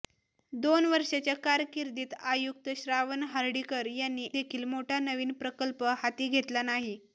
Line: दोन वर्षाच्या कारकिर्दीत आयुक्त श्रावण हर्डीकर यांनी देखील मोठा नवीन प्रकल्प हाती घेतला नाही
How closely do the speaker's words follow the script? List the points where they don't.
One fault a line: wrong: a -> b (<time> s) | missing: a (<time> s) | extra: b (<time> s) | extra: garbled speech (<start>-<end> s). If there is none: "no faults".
no faults